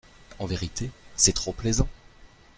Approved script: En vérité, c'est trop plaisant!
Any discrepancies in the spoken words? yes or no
no